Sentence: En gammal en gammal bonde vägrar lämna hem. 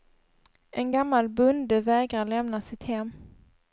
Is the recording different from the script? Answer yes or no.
yes